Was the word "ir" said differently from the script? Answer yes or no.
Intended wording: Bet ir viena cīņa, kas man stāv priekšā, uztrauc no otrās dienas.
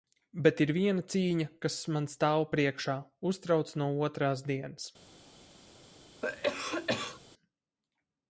no